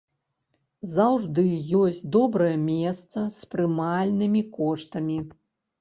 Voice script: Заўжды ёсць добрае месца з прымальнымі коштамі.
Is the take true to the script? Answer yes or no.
yes